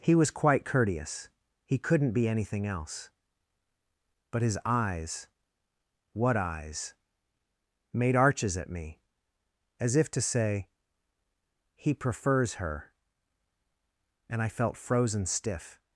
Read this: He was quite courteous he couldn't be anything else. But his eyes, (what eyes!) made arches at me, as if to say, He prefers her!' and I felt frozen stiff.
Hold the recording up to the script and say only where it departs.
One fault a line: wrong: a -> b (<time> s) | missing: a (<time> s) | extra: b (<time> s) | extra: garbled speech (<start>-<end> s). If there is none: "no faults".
no faults